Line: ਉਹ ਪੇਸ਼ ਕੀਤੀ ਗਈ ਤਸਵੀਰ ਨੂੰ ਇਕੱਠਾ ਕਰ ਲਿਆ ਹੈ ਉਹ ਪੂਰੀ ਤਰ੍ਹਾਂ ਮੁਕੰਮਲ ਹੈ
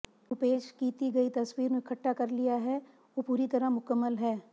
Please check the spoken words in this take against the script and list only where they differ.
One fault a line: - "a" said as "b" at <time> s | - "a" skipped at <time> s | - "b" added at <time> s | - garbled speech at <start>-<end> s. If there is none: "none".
none